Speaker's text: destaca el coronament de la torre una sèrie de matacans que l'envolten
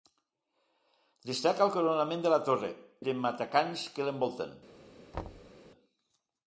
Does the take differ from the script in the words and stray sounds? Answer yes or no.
yes